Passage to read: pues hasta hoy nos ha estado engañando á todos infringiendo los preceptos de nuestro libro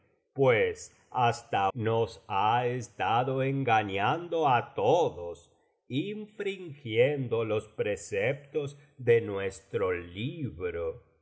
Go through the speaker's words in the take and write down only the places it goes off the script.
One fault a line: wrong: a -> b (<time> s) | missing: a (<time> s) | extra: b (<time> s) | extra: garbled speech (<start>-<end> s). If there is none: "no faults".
missing: hoy (1.7 s)